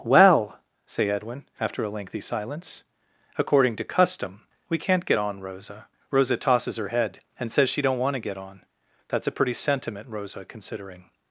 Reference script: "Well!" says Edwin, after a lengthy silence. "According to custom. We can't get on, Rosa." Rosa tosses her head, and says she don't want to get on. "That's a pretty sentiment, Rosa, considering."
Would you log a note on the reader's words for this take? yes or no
yes